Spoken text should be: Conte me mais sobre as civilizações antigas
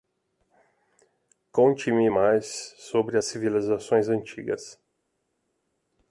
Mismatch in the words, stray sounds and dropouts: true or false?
false